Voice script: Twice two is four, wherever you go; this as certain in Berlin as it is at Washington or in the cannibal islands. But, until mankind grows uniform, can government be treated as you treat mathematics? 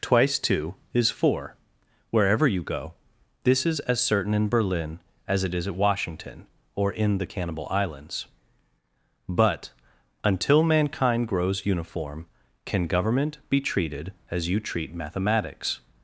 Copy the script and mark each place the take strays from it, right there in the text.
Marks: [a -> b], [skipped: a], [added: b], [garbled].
Twice two is four, wherever you go; this [added: is] as certain in Berlin as it is at Washington or in the cannibal islands. But, until mankind grows uniform, can government be treated as you treat mathematics?